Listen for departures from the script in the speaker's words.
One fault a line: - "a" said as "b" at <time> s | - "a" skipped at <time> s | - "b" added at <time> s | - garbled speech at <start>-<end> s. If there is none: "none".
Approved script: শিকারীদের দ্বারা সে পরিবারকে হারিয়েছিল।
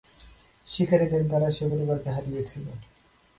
none